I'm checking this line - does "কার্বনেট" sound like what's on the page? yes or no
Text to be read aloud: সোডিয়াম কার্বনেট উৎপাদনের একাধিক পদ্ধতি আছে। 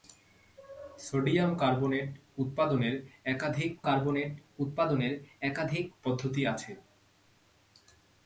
yes